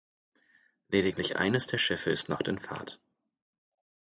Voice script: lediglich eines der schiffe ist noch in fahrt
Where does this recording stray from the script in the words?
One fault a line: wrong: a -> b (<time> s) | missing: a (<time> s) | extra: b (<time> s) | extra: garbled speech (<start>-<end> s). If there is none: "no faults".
no faults